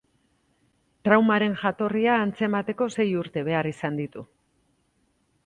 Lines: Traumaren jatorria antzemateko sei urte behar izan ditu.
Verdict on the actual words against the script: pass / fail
pass